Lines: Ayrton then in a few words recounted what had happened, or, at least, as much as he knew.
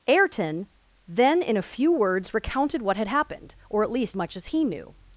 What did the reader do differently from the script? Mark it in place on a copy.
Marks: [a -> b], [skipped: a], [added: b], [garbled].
Ayrton then in a few words recounted what had happened, or, at least, [skipped: as] much as he knew.